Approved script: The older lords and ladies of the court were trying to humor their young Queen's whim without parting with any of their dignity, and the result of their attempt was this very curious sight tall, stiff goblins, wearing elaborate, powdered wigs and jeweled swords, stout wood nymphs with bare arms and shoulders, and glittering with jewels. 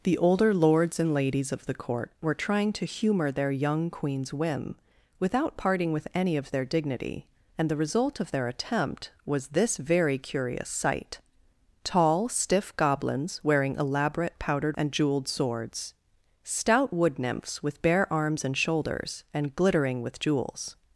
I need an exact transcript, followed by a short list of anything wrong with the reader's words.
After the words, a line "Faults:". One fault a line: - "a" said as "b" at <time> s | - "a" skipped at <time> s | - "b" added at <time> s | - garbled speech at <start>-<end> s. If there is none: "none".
The older lords and ladies of the court were trying to humor their young Queen's whim without parting with any of their dignity, and the result of their attempt was this very curious sight tall, stiff goblins, wearing elaborate, powdered and jeweled swords, stout wood nymphs with bare arms and shoulders, and glittering with jewels.
Faults:
- "wigs" skipped at 14.8 s